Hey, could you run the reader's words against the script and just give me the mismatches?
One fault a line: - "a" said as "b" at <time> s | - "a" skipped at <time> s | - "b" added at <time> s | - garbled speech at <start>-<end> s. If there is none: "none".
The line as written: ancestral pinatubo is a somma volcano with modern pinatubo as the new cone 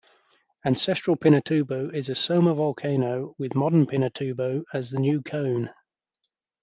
none